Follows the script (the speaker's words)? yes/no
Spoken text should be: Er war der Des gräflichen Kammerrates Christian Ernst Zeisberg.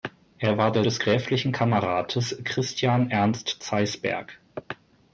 yes